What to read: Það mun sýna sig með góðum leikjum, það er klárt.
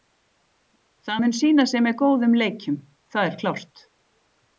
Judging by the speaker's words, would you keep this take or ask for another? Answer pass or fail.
pass